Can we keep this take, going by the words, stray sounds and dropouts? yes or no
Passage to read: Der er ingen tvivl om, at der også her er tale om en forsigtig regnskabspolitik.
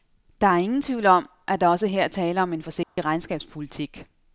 no